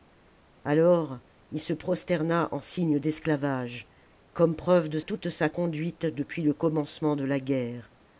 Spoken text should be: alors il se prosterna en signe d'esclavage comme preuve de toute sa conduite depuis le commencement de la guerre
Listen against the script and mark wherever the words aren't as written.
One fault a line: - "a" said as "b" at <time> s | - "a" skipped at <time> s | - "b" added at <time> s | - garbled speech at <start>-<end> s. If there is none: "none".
none